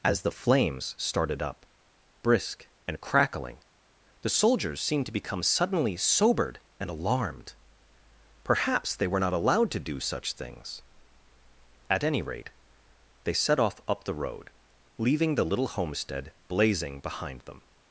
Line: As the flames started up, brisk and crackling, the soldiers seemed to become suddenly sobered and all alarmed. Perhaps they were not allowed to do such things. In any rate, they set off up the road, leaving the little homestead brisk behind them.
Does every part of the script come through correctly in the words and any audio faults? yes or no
no